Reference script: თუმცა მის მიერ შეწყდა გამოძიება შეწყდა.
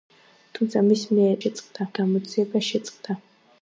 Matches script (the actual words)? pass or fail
pass